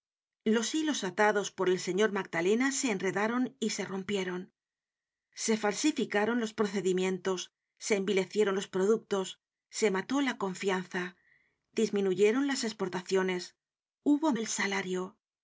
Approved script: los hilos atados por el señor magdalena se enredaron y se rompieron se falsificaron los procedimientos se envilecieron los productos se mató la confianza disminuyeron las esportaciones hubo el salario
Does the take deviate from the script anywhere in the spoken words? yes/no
no